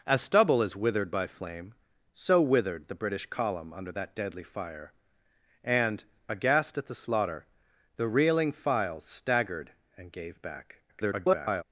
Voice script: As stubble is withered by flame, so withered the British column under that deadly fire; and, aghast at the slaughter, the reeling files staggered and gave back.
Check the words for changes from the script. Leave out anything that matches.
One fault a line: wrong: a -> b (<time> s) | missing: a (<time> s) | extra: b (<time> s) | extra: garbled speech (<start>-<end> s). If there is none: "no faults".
extra: garbled speech (10.9-11.6 s)